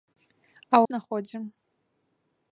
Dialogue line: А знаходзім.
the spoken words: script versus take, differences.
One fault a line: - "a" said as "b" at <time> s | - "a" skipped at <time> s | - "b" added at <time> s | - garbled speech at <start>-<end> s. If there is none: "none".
none